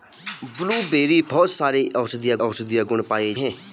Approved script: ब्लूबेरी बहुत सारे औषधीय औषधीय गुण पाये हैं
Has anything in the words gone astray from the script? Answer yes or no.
no